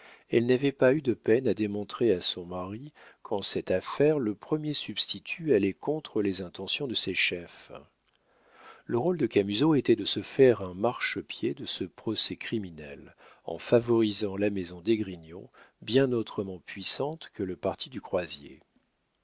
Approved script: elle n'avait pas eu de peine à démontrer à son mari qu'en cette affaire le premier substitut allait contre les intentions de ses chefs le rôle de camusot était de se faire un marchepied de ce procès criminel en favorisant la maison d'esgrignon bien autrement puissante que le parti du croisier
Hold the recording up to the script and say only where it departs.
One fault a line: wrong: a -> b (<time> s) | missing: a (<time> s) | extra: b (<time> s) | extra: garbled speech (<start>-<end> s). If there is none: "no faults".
no faults